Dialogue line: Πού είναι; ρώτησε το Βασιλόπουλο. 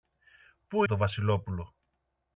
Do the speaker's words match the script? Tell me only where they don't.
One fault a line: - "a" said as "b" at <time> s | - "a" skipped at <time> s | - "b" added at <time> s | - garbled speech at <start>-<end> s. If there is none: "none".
- "είναι ρώτησε" skipped at 0.8 s